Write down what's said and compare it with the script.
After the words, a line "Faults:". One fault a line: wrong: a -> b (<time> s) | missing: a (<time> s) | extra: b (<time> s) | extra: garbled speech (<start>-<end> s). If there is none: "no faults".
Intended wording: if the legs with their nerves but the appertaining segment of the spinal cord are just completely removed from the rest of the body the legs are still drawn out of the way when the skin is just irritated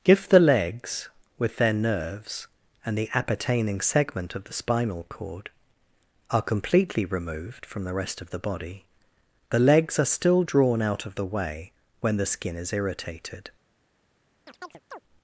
if the legs with their nerves and the appertaining segment of the spinal cord are completely removed from the rest of the body the legs are still drawn out of the way when the skin is irritated
Faults:
wrong: but -> and (2.8 s)
missing: just (6.4 s)
missing: just (12.7 s)